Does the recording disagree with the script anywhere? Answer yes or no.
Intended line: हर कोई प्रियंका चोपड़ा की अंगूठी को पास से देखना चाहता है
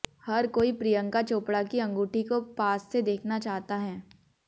no